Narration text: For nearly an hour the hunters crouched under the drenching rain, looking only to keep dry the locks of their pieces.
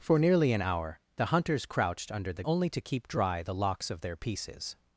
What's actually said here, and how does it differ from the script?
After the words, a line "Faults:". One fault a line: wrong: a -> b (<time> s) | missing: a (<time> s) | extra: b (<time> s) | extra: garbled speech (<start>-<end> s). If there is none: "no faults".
For nearly an hour the hunters crouched under the only to keep dry the locks of their pieces.
Faults:
missing: drenching rain looking (2.4 s)